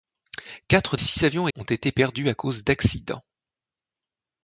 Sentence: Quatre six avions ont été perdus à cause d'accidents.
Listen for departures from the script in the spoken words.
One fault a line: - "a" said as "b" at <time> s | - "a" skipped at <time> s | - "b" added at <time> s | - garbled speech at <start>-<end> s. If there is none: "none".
none